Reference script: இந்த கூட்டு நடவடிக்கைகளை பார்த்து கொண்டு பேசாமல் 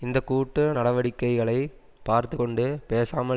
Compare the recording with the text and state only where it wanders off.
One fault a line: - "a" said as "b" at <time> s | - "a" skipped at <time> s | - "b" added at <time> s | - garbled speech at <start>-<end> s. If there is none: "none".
none